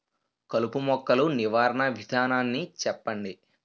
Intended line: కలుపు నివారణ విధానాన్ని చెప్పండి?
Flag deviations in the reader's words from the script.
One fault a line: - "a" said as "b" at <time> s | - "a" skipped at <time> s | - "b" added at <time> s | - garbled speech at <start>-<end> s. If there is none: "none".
- "మొక్కలు" added at 0.8 s